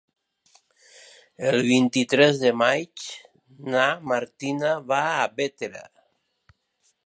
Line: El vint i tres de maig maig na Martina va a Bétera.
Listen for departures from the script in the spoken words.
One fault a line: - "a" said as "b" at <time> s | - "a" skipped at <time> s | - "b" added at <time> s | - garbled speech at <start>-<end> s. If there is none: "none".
- "maig" skipped at 3.1 s